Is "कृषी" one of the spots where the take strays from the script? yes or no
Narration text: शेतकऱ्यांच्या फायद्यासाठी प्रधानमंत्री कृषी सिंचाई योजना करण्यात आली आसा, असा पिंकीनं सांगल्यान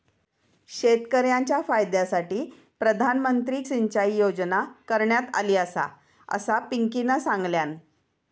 yes